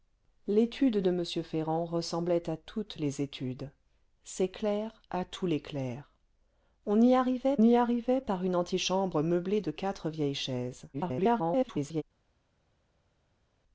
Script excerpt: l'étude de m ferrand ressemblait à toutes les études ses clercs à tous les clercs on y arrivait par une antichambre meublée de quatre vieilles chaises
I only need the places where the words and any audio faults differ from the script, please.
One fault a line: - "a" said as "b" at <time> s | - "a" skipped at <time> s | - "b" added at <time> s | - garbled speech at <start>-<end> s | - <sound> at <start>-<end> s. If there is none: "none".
- "y arrivait" added at 7.6 s
- garbled speech at 10.9-12.0 s